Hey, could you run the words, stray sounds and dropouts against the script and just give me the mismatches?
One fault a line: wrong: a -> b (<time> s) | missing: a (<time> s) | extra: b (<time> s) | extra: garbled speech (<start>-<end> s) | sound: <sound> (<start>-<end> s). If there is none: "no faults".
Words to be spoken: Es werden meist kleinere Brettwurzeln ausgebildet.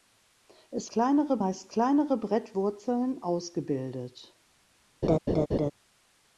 wrong: werden -> kleinere (0.9 s)
sound: laugh (5.0-5.7 s)